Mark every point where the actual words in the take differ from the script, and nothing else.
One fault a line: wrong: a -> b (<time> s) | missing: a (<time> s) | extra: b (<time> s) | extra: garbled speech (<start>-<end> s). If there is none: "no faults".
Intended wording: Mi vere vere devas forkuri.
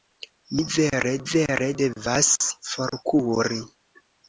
no faults